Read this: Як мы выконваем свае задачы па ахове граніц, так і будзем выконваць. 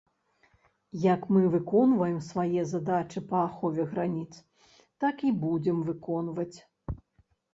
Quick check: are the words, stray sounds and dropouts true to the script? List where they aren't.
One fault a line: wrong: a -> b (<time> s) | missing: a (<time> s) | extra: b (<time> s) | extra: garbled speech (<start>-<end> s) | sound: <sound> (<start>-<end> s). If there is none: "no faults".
no faults